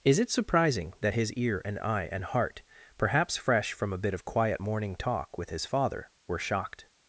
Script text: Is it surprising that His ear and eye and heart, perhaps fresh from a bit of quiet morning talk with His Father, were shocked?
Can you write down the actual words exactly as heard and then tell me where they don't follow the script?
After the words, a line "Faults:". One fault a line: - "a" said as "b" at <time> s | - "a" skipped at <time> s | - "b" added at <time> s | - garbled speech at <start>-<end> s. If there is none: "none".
Is it surprising that His ear and eye and heart, perhaps fresh from a bit of quiet morning talk with His Father, were shocked?
Faults:
none